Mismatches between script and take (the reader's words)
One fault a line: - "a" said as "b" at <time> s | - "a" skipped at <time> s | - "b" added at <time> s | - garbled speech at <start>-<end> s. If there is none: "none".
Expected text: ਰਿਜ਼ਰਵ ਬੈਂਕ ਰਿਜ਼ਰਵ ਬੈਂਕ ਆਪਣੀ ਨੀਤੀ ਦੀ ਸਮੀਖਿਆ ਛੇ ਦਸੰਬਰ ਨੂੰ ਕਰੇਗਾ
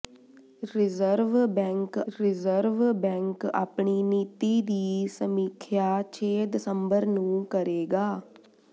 none